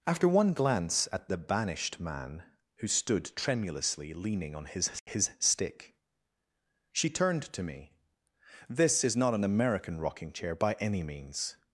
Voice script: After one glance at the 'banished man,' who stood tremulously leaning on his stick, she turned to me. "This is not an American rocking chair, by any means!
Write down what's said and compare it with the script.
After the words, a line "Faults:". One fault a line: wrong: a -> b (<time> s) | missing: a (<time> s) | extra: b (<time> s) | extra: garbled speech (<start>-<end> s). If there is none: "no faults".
After one glance at the 'banished man,' who stood tremulously leaning on his his stick, she turned to me. "This is not an American rocking chair, by any means!
Faults:
extra: his (5.0 s)